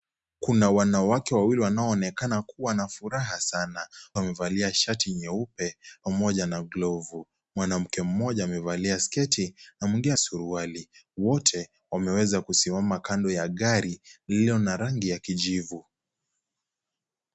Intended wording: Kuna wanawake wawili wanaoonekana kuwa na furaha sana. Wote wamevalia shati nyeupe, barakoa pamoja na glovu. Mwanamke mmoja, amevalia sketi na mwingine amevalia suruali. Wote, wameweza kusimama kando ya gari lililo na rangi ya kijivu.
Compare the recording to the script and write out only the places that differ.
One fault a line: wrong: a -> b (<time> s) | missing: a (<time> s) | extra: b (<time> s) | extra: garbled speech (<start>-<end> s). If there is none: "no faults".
missing: Wote (3.9 s)
missing: barakoa (5.8 s)
missing: amevalia (10.1 s)